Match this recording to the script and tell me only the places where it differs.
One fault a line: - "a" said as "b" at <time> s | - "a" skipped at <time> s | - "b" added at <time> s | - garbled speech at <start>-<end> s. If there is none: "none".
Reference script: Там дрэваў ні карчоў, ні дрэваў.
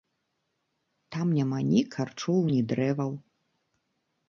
- "дрэваў" said as "няма" at 1.4 s